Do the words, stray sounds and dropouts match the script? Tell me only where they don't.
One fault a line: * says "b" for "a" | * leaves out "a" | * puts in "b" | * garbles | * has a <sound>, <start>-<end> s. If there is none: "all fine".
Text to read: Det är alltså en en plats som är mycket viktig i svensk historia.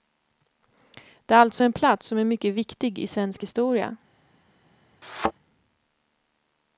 * leaves out "en"
* has a thud, 5.0-5.3 s